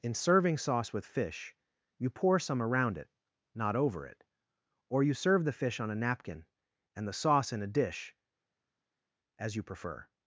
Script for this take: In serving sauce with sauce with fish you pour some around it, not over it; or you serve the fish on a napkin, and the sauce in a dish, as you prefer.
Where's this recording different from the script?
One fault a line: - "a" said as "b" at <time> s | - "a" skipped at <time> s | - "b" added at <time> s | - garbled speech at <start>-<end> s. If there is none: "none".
- "sauce with" skipped at 1.1 s